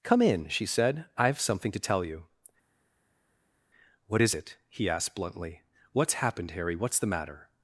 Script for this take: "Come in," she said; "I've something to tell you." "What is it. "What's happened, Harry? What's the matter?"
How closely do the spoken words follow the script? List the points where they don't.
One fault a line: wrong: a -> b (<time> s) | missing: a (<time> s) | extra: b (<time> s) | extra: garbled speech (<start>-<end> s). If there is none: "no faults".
extra: he asked bluntly (4.7 s)